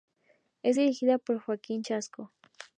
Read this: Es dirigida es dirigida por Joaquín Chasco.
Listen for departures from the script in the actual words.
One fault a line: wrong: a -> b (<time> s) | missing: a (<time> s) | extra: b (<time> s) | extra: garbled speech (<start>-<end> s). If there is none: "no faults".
missing: es dirigida (1.2 s)